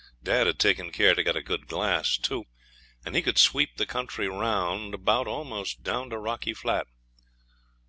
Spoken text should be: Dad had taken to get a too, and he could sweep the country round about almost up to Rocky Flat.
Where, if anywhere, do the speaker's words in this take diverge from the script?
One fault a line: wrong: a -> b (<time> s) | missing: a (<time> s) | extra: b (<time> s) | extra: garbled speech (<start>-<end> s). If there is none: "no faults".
extra: care (0.9 s)
extra: good glass (1.4 s)
wrong: up -> down (5.8 s)